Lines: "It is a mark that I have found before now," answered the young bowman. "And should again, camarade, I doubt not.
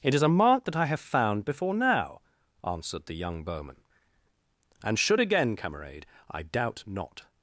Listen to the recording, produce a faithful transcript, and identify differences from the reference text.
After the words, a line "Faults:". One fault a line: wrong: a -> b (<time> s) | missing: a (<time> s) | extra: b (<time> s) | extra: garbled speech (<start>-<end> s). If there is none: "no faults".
"It is a mark that I have found before now," answered the young bowman. "And should again, camarade, I doubt not.
Faults:
no faults